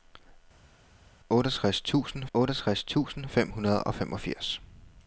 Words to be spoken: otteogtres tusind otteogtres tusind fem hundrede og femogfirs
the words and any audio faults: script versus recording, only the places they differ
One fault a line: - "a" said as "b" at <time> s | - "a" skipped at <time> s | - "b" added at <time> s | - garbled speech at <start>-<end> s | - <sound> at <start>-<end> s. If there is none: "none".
none